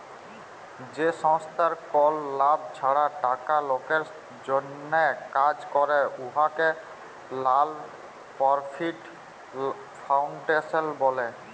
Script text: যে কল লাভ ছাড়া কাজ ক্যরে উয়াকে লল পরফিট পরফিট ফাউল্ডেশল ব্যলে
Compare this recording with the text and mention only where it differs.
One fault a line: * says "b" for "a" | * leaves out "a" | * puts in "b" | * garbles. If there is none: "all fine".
* puts in "সংস্থার"
* puts in "টাকা লকের জ্যনহে"
* leaves out "পরফিট"